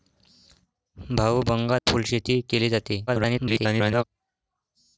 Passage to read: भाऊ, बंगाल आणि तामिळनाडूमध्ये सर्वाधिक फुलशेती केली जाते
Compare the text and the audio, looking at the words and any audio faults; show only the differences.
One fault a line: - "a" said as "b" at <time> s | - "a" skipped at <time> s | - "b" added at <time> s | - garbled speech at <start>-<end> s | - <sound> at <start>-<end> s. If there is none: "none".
- "आणि तामिळनाडूमध्ये सर्वाधिक" skipped at 1.8 s
- garbled speech at 3.1-4.0 s